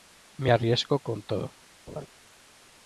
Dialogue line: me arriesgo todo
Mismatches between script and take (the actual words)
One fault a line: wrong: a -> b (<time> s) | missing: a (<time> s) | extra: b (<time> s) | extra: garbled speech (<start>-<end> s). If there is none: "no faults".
extra: con (1.0 s)